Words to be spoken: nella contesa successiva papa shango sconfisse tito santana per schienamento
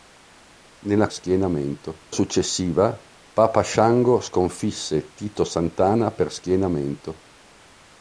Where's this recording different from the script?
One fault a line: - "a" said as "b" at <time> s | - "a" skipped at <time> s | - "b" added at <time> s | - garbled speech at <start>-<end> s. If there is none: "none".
- "contesa" said as "schienamento" at 1.1 s